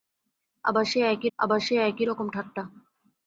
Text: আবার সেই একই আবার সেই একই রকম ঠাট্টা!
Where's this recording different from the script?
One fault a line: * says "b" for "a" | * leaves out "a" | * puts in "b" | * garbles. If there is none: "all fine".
all fine